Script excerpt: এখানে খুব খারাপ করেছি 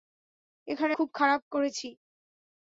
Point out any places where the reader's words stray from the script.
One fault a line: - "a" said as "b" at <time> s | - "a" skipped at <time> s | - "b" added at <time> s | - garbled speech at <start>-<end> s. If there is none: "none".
none